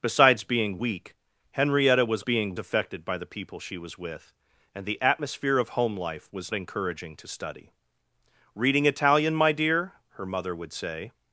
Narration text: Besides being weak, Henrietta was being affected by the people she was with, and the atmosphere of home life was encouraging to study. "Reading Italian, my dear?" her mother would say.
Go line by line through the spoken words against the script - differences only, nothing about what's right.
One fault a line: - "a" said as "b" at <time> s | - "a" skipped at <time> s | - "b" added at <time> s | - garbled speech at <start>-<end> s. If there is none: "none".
none